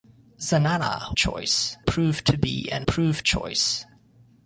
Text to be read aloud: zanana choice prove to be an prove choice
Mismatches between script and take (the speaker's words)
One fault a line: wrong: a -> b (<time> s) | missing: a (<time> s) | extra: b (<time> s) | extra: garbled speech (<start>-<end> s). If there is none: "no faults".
no faults